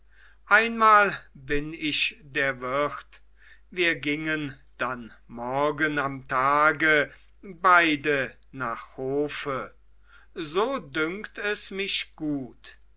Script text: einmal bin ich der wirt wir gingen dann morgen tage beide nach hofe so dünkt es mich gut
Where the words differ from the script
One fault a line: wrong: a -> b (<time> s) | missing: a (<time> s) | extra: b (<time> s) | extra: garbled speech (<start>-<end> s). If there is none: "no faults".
extra: am (6.0 s)